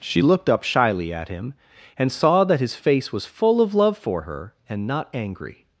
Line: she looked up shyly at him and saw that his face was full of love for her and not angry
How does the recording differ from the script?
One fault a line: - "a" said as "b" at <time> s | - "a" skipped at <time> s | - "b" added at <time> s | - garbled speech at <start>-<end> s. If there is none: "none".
none